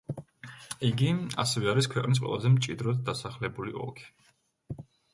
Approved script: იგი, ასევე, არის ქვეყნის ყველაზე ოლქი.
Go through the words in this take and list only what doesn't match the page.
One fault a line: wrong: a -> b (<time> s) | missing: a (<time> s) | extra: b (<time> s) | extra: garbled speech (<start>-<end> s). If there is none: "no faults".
extra: მჭიდროდ დასახლებული (2.6 s)